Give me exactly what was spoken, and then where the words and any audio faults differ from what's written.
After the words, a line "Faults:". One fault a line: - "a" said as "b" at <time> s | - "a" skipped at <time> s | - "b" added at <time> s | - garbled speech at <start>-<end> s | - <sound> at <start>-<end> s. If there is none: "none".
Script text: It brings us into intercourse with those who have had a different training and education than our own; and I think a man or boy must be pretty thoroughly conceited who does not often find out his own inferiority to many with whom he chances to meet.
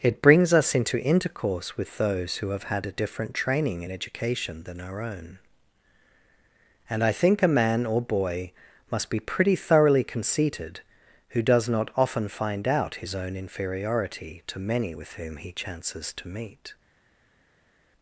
It brings us into intercourse with those who have had a different training and education than our own; and I think a man or boy must be pretty thoroughly conceited who does not often find out his own inferiority to many with whom he chances to meet.
Faults:
none